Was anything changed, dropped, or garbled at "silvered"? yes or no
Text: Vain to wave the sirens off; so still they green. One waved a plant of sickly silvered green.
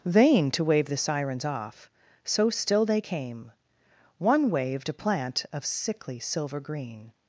yes